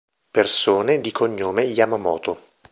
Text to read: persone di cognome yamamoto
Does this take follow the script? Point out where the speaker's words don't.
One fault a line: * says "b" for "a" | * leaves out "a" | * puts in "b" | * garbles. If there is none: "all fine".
all fine